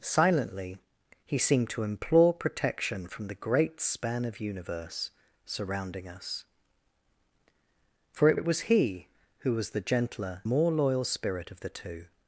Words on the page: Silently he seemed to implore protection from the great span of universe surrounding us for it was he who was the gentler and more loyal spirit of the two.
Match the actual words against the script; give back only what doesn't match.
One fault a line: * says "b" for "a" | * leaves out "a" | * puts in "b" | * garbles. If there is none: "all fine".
* puts in "it"
* leaves out "and"